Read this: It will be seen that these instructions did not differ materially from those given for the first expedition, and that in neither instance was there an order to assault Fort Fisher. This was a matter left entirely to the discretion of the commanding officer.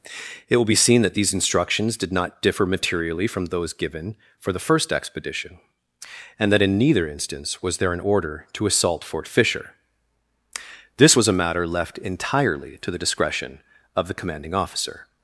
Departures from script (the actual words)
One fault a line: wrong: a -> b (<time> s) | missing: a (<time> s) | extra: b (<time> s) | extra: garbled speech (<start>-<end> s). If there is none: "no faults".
no faults